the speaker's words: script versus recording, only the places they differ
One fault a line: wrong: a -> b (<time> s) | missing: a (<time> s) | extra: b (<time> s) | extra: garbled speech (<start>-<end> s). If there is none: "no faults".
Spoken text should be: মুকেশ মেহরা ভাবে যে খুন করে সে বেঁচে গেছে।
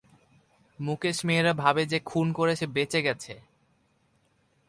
no faults